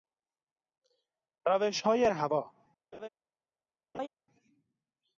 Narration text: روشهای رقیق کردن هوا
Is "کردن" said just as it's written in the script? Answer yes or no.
no